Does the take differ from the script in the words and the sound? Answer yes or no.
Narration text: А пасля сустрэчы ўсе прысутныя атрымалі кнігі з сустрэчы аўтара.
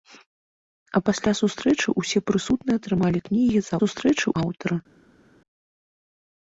no